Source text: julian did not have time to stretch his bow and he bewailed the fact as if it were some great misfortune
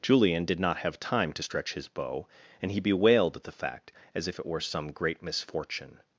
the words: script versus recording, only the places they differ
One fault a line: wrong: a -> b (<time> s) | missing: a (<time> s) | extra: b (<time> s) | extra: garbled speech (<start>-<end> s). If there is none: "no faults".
no faults